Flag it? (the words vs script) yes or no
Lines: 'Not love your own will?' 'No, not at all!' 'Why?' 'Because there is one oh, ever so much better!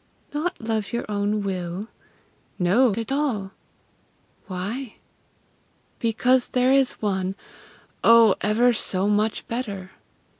yes